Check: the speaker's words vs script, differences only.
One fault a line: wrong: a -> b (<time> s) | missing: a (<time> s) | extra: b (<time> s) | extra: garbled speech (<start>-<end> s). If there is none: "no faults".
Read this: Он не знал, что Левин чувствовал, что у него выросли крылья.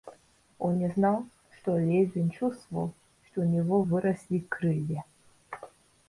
no faults